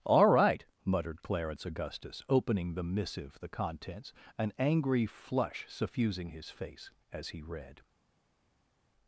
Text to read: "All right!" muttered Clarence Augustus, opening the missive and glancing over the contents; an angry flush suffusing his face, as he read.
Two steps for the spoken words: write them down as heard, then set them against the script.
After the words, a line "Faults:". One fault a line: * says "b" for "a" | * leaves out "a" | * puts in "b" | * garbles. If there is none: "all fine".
"All right!" muttered Clarence Augustus, opening the missive the contents; an angry flush suffusing his face, as he read.
Faults:
* leaves out "and glancing over"